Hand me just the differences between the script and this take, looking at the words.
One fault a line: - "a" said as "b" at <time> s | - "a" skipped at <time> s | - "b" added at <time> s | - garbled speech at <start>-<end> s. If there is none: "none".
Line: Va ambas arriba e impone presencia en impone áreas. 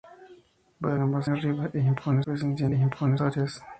none